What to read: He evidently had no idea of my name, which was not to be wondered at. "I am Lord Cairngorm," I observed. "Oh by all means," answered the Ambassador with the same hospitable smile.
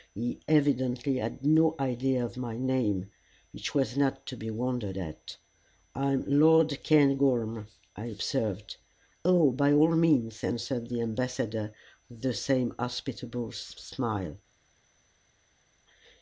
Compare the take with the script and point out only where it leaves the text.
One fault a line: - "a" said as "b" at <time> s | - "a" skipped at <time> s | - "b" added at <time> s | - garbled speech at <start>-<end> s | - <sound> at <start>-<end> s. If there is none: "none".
none